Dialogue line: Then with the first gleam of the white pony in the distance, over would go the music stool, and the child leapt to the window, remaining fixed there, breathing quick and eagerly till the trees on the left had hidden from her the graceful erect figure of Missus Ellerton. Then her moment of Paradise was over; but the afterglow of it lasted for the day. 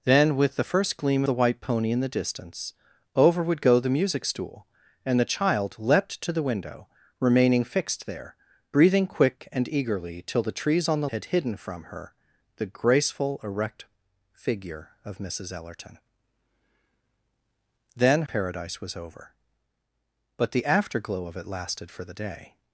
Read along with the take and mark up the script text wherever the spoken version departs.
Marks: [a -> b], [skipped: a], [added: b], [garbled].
Then with the first gleam [skipped: of] the white pony in the distance, over would go the music stool, and the child leapt to the window, remaining fixed there, breathing quick and eagerly till the trees on the [skipped: left] had hidden from her the graceful erect figure of Missus Ellerton. Then [skipped: her moment of] Paradise was over; but the afterglow of it lasted for the day.